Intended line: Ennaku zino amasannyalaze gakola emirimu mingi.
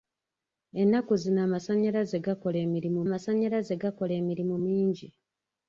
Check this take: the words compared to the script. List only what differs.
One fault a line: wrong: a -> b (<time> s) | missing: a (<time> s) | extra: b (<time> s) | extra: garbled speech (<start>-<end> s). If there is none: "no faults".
extra: amasannyalaze gakola emirimu (3.1 s)